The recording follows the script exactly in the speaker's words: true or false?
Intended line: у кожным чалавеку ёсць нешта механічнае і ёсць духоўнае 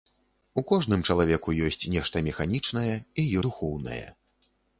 false